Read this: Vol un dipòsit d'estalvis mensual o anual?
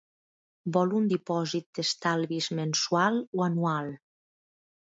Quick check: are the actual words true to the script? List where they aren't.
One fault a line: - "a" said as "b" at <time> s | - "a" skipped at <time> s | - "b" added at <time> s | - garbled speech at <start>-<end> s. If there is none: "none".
none